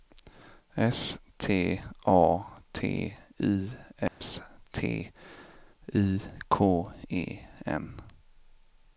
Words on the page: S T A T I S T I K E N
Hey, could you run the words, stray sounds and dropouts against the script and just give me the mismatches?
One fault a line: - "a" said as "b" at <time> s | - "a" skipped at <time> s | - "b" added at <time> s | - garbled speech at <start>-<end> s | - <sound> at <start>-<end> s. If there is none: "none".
- dropout at 4.1-4.2 s